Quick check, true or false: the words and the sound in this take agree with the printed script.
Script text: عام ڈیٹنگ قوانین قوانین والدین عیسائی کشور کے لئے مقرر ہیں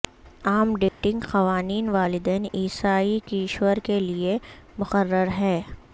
false